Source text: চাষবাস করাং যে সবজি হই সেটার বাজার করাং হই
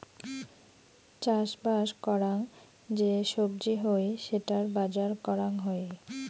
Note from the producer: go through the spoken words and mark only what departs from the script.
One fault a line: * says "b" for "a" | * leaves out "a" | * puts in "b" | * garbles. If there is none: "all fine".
all fine